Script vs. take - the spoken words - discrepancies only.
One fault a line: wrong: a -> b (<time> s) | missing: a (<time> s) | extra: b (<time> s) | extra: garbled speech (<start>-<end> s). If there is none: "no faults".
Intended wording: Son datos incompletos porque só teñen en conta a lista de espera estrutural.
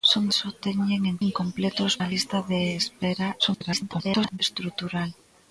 missing: datos incompletos porque (0.2 s)
wrong: conta -> incompletos (1.3 s)
extra: garbled speech (3.4-4.4 s)